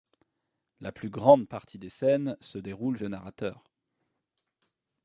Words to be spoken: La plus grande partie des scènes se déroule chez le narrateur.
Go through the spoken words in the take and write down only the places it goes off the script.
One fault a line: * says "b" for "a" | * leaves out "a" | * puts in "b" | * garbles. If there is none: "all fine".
* leaves out "chez"